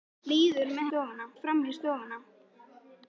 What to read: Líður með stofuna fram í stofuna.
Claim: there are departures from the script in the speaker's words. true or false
false